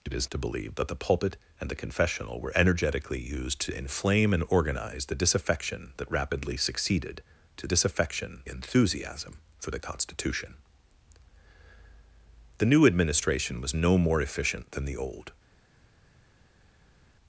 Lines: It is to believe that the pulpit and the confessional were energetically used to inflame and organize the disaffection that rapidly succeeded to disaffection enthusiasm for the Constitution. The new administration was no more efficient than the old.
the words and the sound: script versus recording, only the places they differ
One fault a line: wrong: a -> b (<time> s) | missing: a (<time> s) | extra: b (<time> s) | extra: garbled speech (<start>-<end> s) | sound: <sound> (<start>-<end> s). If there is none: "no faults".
no faults